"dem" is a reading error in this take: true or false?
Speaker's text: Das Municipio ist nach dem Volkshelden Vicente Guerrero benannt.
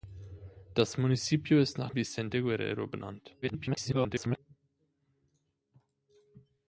true